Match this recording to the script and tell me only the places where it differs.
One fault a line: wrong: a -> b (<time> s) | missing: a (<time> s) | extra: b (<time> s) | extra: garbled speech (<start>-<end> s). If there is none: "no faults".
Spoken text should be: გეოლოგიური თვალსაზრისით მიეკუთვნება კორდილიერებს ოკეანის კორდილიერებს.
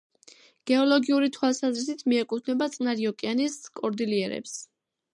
wrong: კორდილიერებს -> წყნარი (2.8 s)